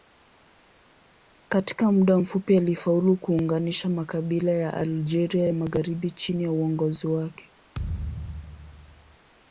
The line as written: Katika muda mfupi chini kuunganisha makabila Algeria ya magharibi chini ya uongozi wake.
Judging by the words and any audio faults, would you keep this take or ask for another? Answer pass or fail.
fail